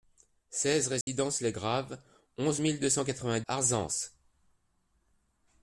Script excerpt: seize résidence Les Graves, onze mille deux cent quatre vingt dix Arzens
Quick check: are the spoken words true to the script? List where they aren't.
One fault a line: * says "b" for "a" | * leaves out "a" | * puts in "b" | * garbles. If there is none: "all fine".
* leaves out "dix"